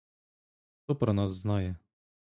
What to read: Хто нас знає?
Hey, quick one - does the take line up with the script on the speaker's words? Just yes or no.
no